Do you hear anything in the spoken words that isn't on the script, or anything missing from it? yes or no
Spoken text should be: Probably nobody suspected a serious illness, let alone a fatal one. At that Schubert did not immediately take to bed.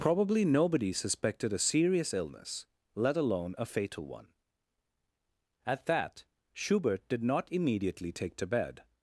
no